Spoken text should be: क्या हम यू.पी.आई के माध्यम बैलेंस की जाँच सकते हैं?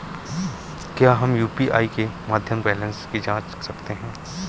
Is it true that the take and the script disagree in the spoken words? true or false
false